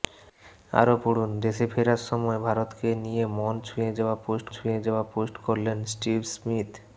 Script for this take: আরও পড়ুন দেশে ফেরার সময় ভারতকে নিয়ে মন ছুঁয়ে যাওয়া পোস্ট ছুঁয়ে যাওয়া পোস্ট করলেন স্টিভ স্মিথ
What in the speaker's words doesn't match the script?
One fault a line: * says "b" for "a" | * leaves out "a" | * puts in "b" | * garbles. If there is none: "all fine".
all fine